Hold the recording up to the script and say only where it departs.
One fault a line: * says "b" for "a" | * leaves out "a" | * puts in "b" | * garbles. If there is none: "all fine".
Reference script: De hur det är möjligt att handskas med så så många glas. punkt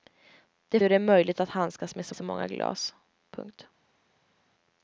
all fine